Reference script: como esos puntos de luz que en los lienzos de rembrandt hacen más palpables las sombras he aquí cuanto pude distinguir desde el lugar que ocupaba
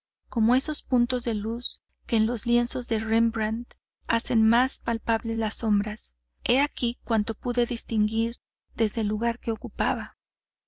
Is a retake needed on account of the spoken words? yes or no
no